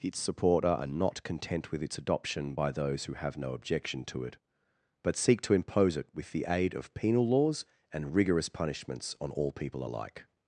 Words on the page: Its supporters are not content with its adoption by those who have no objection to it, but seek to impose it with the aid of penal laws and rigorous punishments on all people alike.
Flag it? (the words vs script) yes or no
yes